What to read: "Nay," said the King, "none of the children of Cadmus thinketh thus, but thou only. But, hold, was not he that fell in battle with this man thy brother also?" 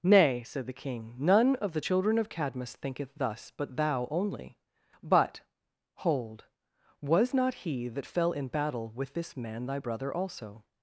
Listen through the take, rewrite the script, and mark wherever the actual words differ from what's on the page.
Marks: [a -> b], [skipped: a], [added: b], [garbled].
"Nay," said the King, "none of the children of Cadmus thinketh thus, but thou only. But, hold, was not he that fell in battle with this man thy brother also?"